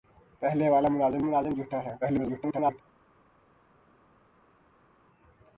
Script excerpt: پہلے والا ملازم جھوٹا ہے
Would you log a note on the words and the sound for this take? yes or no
yes